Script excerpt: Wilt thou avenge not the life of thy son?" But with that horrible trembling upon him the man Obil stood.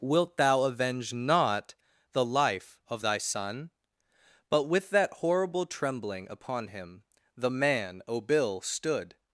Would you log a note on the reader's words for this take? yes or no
no